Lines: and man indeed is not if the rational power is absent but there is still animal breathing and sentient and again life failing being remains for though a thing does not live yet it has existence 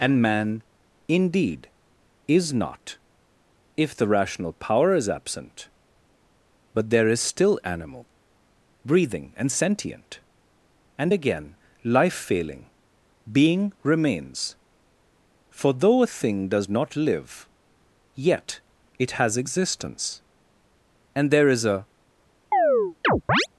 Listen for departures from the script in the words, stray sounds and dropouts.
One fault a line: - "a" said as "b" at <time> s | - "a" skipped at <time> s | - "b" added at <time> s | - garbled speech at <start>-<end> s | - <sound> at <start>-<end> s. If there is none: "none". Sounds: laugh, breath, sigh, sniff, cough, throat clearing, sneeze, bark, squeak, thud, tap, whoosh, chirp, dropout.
- "and there is a" added at 21.2 s
- chirp at 22.5-23.5 s